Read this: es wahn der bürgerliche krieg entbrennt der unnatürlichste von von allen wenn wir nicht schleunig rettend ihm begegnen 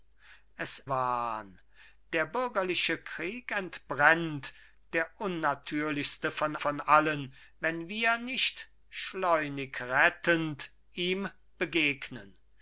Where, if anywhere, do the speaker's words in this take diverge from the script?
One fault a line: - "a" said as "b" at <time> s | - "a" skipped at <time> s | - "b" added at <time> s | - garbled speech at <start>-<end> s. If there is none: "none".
none